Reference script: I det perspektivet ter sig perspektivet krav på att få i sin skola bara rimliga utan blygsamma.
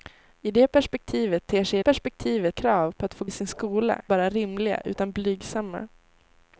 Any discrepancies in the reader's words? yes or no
no